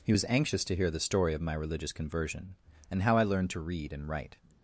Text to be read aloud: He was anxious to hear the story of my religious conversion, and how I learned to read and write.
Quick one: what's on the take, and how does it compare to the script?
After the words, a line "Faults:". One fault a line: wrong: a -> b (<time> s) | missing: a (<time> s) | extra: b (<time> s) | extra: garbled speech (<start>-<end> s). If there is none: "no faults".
He was anxious to hear the story of my religious conversion, and how I learned to read and write.
Faults:
no faults